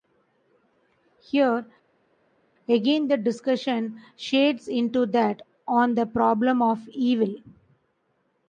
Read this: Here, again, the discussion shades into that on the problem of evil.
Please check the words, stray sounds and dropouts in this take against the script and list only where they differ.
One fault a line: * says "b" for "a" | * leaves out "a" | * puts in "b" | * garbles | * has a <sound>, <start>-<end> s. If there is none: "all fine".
all fine